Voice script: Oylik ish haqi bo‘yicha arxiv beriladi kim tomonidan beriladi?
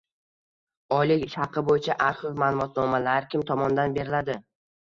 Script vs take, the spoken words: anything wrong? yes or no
yes